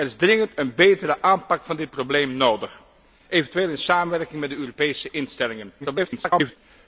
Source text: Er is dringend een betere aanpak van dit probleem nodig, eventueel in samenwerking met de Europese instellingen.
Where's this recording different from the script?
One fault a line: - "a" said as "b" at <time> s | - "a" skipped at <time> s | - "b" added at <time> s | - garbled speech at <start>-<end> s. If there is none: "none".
- garbled speech at 5.8-6.6 s